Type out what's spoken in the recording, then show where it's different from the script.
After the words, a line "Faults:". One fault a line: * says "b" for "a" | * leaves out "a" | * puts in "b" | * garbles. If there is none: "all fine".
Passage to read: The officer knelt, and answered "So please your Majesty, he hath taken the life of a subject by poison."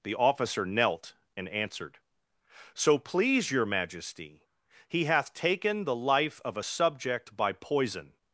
The officer knelt, and answered "So please your Majesty, he hath taken the life of a subject by poison."
Faults:
all fine